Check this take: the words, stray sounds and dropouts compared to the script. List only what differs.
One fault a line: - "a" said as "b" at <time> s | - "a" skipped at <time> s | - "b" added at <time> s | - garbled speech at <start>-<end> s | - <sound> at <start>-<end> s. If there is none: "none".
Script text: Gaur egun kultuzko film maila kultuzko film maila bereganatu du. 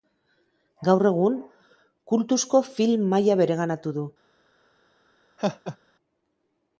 - "kultuzko film maila" skipped at 3.4 s
- laugh at 5.4-5.8 s